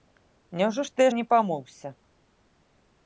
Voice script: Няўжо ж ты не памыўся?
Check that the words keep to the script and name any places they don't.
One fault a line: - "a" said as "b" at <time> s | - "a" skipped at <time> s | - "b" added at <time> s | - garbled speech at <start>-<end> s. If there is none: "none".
none